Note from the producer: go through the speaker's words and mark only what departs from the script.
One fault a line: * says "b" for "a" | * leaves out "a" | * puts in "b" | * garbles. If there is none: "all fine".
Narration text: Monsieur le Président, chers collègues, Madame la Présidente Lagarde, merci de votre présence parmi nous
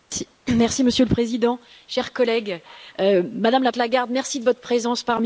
* leaves out "Présidente"